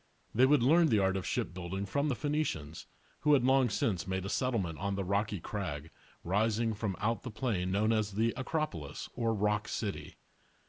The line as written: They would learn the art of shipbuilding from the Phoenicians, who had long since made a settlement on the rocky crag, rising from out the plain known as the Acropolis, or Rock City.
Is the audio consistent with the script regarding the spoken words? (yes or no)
yes